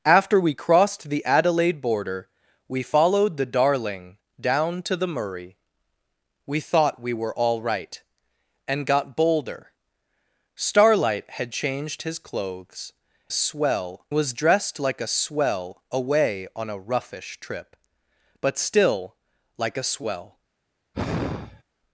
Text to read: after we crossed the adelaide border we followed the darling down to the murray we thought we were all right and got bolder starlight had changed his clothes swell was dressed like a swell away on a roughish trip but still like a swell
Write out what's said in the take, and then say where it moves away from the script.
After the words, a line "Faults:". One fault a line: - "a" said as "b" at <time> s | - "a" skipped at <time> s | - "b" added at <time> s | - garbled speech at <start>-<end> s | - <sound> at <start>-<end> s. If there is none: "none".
after we crossed the adelaide border we followed the darling down to the murray we thought we were all right and got bolder starlight had changed his clothes swell was dressed like a swell away on a roughish trip but still like a swell
Faults:
- sigh at 20.9-21.6 s